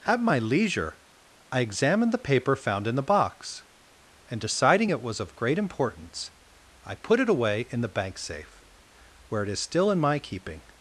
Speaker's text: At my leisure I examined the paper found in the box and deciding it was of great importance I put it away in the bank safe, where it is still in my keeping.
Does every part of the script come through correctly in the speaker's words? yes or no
yes